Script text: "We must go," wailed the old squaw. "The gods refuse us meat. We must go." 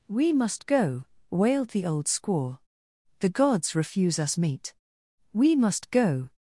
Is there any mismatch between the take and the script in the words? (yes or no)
no